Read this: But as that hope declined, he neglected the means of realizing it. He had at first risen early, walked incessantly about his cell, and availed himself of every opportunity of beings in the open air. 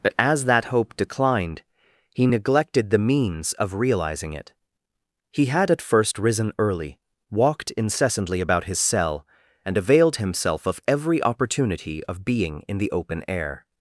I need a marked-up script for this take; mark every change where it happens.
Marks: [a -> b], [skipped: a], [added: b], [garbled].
But as that hope declined, he neglected the means of realizing it. He had at first risen early, walked incessantly about his cell, and availed himself of every opportunity of [beings -> being] in the open air.